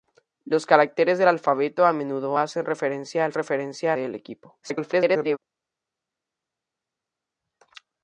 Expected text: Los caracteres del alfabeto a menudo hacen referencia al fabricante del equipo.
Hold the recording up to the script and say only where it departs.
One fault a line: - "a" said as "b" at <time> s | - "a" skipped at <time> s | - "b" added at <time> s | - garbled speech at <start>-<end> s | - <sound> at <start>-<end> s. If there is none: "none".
- "fabricante" said as "referencia" at 3.3 s
- garbled speech at 4.6-5.4 s